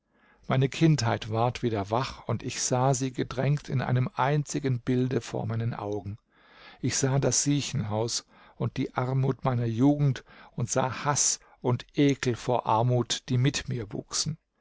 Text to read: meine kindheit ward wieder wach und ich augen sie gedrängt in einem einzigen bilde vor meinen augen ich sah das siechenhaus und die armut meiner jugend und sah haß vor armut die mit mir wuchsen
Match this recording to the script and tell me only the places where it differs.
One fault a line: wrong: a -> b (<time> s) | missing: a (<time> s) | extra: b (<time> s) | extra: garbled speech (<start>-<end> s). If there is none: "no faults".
wrong: augen -> sah (2.6 s)
extra: und ekel (11.6 s)